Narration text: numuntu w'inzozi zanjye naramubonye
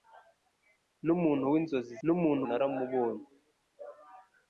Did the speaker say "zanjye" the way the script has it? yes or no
no